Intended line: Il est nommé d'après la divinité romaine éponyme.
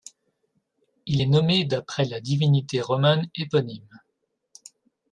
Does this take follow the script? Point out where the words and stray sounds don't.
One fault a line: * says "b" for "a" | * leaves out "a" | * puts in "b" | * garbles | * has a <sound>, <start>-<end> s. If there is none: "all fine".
all fine